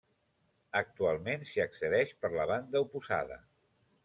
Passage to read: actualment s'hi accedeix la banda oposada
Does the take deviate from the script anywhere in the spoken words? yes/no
yes